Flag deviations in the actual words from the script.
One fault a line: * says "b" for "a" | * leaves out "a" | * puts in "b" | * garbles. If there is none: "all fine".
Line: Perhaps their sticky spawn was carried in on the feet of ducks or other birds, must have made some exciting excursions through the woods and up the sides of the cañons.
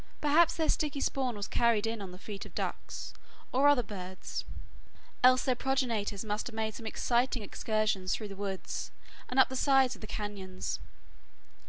* puts in "else their progenitors"